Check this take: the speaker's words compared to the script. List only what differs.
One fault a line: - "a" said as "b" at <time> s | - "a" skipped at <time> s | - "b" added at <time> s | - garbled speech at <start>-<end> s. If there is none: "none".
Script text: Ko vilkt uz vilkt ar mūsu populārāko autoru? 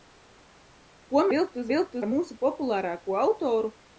none